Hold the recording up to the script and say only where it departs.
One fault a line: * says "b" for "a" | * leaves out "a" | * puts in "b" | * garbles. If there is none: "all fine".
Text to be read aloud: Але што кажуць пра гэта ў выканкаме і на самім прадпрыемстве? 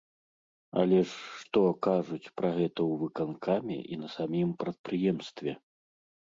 * puts in "ж"